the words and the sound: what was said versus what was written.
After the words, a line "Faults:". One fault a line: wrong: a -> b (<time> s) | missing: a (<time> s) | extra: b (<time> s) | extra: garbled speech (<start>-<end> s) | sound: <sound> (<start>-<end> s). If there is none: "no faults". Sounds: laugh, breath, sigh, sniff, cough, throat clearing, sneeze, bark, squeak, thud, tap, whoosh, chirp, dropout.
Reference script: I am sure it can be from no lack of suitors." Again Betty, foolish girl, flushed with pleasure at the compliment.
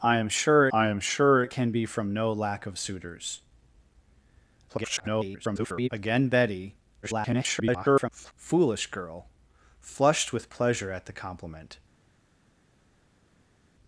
I am sure I am sure it can be from no lack of suitors." [garbled] Again Betty, [garbled] foolish girl, flushed with pleasure at the compliment.
Faults:
extra: I am sure (0.7 s)
extra: garbled speech (4.7-5.9 s)
extra: garbled speech (7.0-8.3 s)